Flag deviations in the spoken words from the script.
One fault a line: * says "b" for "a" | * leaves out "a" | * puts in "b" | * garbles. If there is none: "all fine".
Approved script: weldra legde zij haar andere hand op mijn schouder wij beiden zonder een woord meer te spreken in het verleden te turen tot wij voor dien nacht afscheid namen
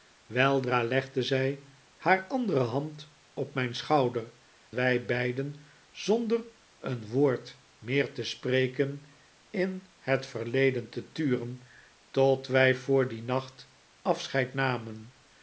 all fine